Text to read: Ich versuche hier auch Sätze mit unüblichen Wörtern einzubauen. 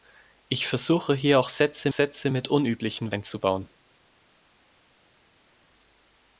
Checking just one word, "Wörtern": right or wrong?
wrong